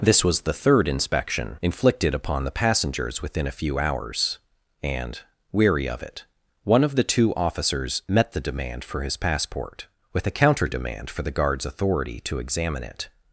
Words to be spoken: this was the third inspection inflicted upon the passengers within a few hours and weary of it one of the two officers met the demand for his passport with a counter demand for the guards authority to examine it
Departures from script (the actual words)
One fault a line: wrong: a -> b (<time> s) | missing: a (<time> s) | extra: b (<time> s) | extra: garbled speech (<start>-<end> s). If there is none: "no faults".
no faults